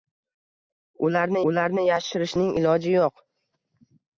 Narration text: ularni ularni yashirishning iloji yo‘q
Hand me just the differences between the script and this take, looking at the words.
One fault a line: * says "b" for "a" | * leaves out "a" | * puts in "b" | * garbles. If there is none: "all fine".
all fine